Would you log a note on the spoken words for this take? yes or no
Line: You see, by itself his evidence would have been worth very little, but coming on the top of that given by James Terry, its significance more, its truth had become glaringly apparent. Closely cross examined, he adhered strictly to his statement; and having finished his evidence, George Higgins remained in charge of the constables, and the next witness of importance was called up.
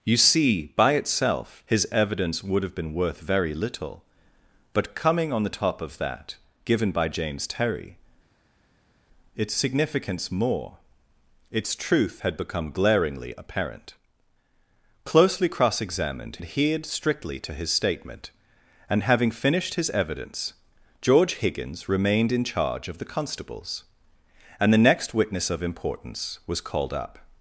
yes